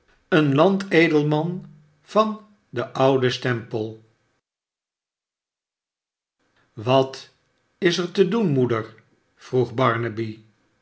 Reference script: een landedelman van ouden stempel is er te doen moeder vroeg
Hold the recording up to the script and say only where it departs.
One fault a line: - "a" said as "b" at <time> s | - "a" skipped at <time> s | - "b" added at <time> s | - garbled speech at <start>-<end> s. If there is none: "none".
- "den" added at 2.7 s
- "wat" added at 6.7 s